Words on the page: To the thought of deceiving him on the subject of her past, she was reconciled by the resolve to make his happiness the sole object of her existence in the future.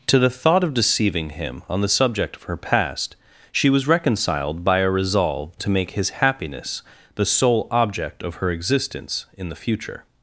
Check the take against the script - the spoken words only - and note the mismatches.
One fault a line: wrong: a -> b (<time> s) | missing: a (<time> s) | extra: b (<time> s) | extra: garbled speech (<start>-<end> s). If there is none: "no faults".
wrong: the -> a (4.8 s)